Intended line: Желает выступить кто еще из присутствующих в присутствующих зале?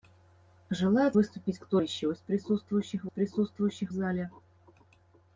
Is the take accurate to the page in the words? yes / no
yes